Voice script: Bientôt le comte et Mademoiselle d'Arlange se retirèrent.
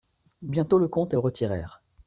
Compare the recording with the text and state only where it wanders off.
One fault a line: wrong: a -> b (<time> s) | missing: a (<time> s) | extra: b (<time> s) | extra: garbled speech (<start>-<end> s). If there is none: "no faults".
missing: Mademoiselle d'Arlange se (1.2 s)